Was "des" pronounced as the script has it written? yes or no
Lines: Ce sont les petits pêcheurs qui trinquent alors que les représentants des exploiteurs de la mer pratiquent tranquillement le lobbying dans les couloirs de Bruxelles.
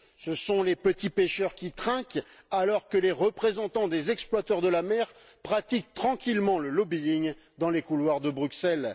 yes